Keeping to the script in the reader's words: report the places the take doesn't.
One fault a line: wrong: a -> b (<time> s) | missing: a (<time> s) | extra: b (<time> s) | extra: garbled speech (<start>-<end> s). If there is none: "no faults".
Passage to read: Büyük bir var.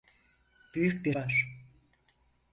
no faults